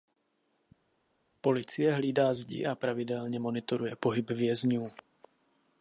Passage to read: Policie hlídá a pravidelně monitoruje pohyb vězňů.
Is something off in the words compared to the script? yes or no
yes